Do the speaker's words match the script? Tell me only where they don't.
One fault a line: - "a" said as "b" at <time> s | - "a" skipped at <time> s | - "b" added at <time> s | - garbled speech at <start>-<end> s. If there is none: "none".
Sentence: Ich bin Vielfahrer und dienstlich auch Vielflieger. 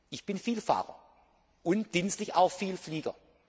none